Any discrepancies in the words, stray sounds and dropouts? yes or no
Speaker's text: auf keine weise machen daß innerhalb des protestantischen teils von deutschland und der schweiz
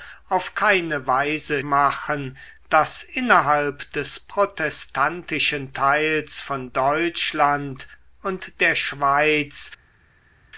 no